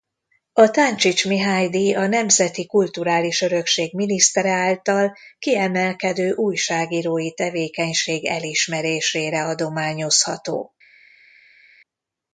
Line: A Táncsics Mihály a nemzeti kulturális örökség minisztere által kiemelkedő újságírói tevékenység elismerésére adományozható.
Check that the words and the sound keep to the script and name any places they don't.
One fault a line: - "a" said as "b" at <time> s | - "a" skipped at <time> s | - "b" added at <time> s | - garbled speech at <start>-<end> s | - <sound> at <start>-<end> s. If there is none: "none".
- "díj" added at 1.7 s